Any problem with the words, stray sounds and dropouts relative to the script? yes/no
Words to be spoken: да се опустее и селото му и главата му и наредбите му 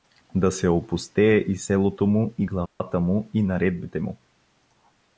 yes